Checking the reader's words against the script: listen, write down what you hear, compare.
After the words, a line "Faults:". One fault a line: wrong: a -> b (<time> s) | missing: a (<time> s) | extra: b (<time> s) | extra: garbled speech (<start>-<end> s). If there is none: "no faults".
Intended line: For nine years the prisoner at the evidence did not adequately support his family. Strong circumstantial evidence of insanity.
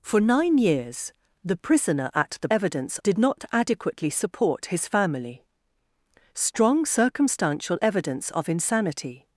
For nine years the prisoner at the evidence did not adequately support his family. Strong circumstantial evidence of insanity.
Faults:
no faults